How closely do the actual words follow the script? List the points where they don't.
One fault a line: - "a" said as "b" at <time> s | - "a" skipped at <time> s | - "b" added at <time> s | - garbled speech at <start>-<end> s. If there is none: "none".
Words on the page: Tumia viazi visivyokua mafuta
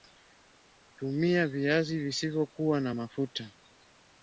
- "na" added at 2.8 s